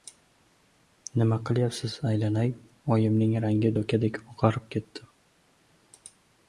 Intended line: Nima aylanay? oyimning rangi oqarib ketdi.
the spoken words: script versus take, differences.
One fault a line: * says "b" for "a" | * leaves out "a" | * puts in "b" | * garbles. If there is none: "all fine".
* puts in "qilyapsiz"
* puts in "dokadek"